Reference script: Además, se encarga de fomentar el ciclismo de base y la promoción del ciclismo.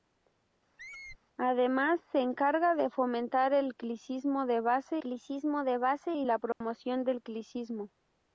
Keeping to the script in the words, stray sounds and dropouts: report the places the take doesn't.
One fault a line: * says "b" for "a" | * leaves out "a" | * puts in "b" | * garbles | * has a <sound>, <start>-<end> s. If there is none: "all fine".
* has a squeak, 0.8-1.2 s
* puts in "ciclismo de base"
* has a dropout, 6.5-6.6 s